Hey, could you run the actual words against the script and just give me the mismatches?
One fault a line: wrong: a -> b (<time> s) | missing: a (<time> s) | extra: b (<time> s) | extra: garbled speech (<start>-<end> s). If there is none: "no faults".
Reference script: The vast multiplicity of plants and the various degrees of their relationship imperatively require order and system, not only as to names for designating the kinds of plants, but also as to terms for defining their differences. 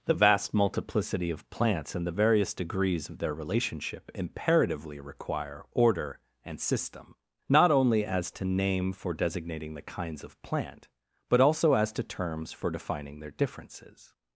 wrong: names -> name (8.4 s)
wrong: plants -> plant (10.4 s)